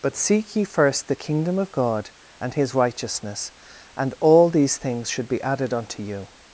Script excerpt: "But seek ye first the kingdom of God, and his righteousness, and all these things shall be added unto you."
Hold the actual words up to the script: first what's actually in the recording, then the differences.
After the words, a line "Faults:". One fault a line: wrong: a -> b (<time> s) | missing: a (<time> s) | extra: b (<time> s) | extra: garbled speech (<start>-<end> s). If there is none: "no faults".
"But seek ye first the kingdom of God, and his righteousness, and all these things should be added unto you."
Faults:
wrong: shall -> should (5.1 s)